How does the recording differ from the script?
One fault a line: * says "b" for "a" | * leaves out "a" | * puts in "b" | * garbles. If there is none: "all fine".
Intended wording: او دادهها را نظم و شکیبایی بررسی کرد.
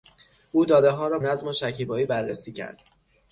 all fine